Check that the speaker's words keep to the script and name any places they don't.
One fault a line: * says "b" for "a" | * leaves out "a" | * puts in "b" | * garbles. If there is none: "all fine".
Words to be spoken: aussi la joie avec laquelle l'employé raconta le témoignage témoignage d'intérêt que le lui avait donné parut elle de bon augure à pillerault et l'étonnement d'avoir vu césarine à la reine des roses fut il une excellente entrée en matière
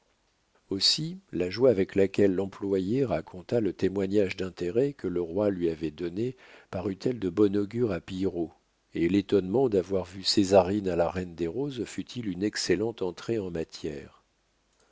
* leaves out "témoignage"
* puts in "roi"